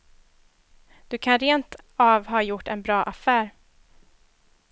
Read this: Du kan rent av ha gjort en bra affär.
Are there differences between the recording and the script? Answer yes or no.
no